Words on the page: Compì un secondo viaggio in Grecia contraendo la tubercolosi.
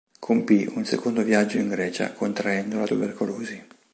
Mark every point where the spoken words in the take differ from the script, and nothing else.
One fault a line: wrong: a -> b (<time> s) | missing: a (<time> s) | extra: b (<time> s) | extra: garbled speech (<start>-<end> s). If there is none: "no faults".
no faults